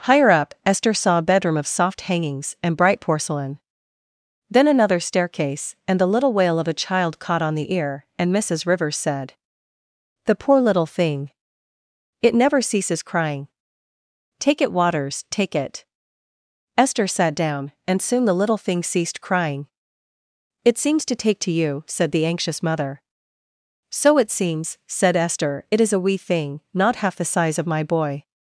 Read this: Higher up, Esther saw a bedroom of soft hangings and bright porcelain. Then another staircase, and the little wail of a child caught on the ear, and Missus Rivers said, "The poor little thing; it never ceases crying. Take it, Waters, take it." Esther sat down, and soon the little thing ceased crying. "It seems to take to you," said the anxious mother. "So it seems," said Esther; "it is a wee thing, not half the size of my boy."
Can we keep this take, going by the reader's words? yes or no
yes